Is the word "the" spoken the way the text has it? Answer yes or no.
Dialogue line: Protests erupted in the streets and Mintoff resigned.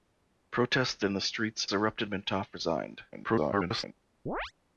yes